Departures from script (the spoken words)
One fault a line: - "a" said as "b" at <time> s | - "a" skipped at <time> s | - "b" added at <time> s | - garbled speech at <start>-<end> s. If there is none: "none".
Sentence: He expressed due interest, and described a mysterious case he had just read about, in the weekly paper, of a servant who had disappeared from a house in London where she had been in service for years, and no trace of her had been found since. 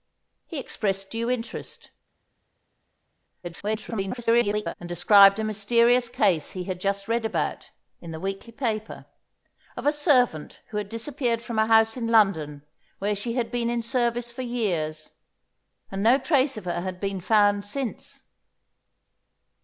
- garbled speech at 3.4-4.7 s